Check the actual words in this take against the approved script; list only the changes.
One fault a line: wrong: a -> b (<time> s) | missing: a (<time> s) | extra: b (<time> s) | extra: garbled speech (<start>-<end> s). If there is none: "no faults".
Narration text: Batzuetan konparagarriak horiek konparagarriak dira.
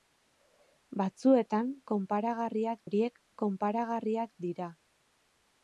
no faults